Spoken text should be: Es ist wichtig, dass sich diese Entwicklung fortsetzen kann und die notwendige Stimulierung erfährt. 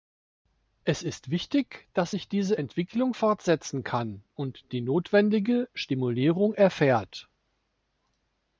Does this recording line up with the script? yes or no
yes